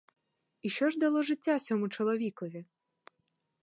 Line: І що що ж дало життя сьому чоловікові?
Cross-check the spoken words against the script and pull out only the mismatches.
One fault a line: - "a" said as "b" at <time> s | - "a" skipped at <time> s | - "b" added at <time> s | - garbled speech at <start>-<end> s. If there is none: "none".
- "що" skipped at 0.9 s